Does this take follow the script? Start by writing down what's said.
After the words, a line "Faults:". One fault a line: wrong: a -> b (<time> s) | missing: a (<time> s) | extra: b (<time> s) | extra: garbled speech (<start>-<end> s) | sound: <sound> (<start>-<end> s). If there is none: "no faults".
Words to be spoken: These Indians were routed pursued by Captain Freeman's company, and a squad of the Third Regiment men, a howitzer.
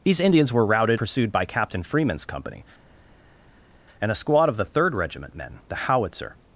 These Indians were routed pursued by Captain Freeman's company, and a squad of the Third Regiment men, a howitzer.
Faults:
no faults